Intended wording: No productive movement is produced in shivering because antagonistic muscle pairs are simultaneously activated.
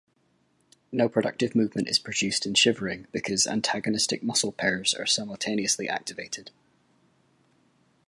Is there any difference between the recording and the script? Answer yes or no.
no